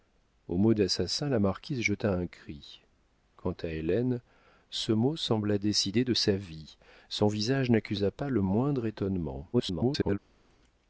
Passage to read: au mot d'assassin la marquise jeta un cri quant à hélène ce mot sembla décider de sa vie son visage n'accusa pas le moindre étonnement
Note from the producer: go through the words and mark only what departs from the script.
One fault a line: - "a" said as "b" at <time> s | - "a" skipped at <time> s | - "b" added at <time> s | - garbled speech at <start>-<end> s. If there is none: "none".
- garbled speech at 9.5-10.2 s